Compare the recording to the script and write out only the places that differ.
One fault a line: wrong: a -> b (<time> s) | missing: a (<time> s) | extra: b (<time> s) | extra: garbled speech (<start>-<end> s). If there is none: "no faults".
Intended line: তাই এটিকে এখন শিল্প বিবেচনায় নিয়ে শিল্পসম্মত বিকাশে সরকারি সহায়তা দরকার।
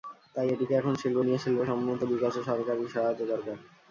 missing: বিবেচনায় (1.2 s)